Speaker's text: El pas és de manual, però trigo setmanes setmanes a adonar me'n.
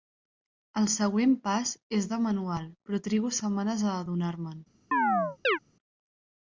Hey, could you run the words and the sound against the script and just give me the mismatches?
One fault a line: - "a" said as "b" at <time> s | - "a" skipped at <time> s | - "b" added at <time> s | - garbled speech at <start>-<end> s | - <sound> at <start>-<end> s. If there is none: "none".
- "següent" added at 0.9 s
- "setmanes" skipped at 3.9 s
- chirp at 4.9-5.6 s